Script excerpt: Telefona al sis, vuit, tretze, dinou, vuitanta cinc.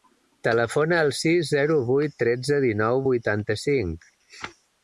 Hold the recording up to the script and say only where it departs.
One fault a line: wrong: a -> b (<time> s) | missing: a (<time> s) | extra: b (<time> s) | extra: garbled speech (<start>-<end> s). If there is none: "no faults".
extra: zero (1.5 s)